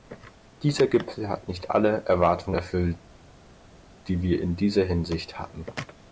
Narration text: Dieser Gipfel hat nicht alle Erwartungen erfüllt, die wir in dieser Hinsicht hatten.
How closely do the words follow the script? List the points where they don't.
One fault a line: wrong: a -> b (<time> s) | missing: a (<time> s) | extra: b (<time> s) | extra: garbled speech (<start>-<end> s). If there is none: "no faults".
no faults